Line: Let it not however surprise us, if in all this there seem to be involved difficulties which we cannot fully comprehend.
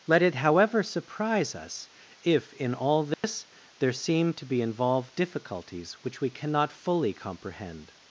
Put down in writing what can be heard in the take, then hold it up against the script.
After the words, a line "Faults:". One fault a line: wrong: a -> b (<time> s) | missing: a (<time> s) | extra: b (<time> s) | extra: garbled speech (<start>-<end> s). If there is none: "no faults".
Let it however surprise us, if in all this there seem to be involved difficulties which we cannot fully comprehend.
Faults:
missing: not (0.3 s)